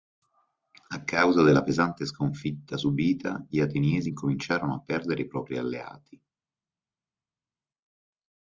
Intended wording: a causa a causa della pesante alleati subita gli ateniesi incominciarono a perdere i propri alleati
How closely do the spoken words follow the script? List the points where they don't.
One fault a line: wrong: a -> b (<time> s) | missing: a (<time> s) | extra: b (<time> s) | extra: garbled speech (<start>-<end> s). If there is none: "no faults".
missing: a causa (1.4 s)
wrong: alleati -> sconfitta (2.1 s)